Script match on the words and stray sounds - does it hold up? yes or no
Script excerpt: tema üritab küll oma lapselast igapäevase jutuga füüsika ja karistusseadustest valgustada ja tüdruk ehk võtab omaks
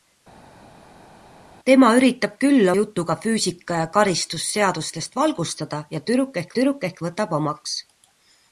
no